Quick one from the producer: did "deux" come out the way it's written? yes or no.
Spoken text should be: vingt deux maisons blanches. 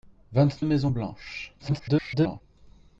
no